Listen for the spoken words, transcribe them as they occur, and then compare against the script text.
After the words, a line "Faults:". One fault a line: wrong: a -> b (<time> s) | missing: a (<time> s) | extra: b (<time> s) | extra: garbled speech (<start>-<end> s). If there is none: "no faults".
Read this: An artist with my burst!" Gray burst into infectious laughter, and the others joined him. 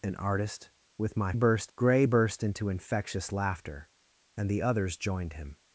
An artist with my burst!" Gray burst into infectious laughter, and the others joined him.
Faults:
no faults